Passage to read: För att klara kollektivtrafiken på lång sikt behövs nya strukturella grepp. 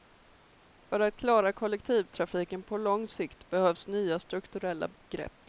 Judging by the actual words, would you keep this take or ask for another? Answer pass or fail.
pass